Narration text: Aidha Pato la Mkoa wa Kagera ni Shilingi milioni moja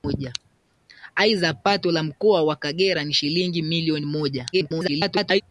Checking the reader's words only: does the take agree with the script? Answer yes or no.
no